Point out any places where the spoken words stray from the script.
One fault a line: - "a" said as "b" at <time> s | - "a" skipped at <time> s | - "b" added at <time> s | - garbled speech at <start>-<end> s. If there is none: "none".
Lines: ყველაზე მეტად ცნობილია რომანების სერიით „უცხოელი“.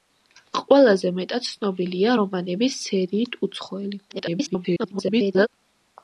- garbled speech at 4.1-5.5 s